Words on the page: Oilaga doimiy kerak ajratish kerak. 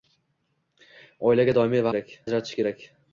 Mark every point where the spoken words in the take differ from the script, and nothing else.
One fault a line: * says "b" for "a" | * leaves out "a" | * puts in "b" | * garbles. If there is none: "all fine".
all fine